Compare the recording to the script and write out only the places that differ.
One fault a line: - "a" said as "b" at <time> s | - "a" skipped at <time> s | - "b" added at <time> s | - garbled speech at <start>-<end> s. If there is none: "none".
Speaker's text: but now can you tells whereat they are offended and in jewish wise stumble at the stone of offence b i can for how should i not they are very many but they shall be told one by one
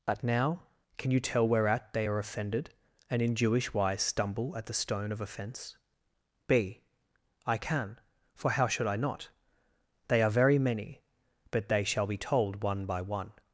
- "tells" said as "tell" at 1.2 s